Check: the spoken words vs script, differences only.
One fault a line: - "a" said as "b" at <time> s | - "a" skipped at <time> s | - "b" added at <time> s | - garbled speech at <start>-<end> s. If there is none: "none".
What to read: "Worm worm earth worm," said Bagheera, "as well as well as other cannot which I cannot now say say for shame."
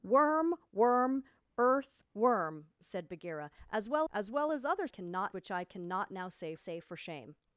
none